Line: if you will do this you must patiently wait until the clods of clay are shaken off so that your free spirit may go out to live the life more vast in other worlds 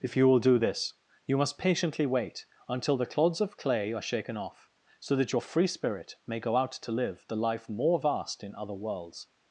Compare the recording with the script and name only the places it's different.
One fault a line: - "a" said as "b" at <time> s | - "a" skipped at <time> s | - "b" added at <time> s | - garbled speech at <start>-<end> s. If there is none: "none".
none